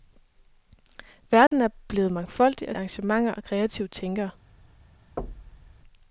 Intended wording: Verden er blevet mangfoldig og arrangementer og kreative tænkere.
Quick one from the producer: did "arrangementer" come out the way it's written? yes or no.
yes